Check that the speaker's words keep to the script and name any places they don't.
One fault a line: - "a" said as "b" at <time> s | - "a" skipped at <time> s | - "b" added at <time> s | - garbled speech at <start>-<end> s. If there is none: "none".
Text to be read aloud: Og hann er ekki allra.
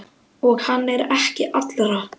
none